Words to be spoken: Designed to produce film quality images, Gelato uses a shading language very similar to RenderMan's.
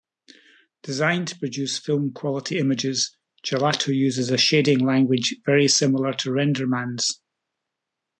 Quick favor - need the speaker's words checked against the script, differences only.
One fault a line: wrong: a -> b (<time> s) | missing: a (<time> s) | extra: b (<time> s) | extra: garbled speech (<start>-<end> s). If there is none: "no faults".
no faults